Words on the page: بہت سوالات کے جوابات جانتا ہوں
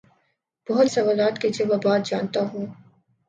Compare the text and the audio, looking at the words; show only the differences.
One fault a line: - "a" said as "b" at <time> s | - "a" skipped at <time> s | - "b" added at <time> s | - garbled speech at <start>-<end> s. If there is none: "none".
none